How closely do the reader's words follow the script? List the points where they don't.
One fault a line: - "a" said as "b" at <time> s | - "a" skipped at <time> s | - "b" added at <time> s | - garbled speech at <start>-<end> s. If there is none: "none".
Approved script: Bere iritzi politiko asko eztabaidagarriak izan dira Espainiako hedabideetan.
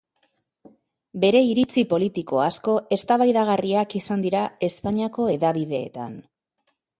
none